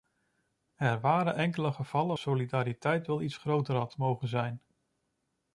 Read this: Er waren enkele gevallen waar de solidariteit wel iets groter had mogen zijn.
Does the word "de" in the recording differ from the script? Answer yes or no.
yes